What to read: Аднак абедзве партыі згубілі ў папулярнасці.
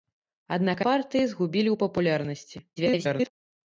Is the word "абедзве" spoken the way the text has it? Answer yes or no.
no